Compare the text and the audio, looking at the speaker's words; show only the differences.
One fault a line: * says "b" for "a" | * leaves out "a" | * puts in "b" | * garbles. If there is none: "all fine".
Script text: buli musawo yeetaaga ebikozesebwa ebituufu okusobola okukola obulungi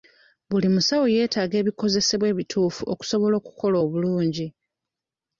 all fine